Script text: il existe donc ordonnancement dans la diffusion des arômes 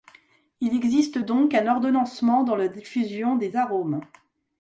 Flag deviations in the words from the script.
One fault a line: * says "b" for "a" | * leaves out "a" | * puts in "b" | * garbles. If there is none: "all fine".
* puts in "un"